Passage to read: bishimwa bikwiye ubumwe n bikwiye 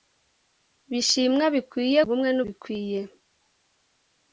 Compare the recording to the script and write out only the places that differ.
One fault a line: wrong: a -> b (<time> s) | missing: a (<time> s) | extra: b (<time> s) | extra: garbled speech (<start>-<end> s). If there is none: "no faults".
no faults